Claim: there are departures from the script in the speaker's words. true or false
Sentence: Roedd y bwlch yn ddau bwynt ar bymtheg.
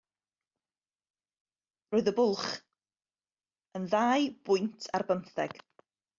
false